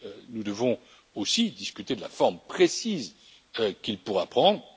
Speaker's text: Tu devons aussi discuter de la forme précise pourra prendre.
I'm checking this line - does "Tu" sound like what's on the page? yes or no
no